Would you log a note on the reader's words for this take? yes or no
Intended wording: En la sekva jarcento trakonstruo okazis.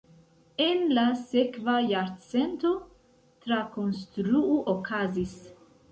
no